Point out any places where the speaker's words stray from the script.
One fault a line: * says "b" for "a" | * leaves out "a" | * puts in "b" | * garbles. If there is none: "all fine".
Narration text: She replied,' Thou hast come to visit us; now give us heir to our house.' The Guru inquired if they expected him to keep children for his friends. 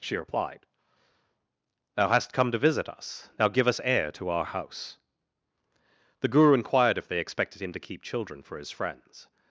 all fine